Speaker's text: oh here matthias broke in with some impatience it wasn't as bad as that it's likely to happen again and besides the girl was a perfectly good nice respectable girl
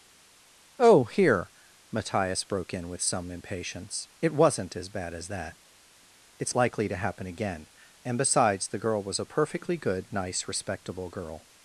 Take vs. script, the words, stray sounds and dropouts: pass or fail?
pass